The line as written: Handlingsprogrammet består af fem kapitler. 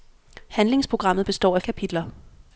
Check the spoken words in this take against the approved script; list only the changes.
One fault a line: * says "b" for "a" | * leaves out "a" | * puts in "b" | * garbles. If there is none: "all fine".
* leaves out "fem"